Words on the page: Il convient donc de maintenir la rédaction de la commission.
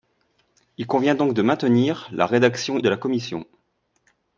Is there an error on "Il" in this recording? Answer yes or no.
no